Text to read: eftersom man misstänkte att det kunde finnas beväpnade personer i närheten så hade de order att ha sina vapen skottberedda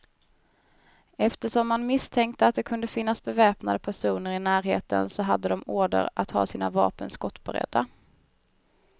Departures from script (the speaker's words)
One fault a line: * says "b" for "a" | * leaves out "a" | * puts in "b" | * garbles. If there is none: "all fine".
all fine